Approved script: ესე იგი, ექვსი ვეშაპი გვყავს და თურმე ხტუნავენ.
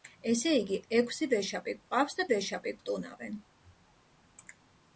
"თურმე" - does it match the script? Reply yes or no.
no